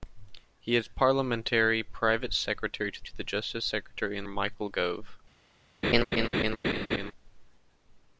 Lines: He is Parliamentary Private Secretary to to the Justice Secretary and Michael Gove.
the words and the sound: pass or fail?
fail